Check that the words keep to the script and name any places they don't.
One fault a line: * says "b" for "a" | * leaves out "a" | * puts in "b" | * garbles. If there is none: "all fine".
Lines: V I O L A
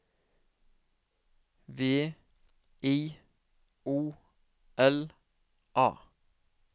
all fine